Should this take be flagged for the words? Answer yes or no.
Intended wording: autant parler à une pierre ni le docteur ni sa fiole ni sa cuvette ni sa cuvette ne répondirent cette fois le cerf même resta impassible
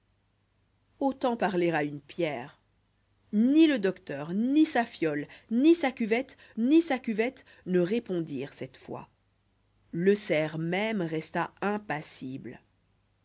no